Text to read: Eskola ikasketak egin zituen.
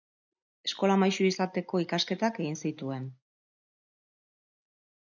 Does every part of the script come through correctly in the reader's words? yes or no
no